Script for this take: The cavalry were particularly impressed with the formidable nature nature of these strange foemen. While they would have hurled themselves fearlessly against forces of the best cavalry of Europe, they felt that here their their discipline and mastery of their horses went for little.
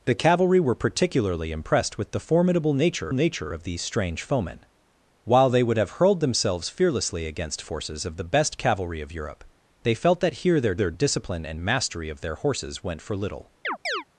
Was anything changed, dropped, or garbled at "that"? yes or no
no